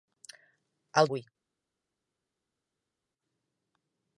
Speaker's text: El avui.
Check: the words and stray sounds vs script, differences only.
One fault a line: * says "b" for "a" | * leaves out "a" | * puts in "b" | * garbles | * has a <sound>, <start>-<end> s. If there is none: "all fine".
all fine